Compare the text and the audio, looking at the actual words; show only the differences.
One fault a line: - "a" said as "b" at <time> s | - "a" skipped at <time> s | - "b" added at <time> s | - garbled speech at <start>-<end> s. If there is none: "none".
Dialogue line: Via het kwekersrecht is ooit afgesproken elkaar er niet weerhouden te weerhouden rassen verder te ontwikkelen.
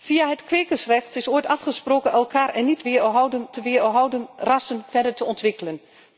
none